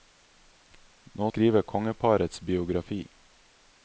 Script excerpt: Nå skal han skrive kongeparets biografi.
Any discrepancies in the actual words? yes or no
yes